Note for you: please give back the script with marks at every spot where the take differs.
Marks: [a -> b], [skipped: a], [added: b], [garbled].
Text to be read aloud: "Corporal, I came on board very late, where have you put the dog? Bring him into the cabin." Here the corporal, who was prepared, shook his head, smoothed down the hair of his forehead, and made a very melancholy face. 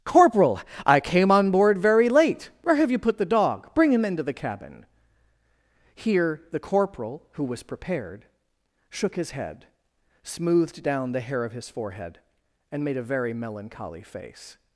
"Corporal, I came on board very late, where have you put the dog? Bring him into the cabin." Here the corporal, who was prepared, shook his head, smoothed down the hair of his forehead, and made a very melancholy face.